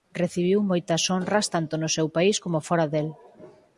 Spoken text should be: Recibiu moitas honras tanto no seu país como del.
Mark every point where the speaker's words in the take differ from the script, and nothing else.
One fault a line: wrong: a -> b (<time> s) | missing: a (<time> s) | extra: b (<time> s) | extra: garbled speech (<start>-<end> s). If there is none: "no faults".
extra: fóra (2.7 s)